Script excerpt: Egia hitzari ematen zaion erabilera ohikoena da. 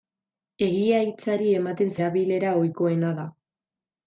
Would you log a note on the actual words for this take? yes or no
yes